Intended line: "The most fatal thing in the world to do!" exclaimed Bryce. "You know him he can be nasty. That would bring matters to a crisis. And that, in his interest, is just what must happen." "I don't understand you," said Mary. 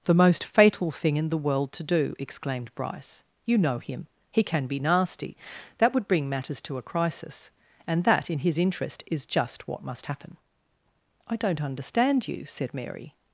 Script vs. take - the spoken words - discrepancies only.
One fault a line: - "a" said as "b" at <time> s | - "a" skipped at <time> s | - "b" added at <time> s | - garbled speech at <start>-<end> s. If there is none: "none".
none